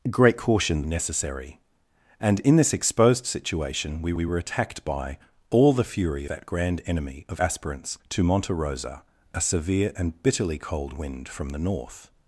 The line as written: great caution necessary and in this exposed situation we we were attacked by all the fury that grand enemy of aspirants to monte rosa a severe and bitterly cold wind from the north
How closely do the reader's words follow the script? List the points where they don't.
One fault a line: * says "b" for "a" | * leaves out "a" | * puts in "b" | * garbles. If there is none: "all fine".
all fine